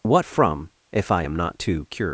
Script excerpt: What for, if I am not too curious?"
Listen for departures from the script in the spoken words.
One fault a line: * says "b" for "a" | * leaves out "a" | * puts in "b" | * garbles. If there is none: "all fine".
* says "from" for "for"